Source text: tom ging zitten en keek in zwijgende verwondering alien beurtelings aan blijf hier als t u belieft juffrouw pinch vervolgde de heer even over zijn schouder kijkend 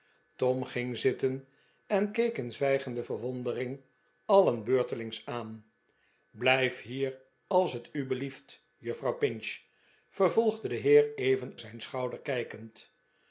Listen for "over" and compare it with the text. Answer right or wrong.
wrong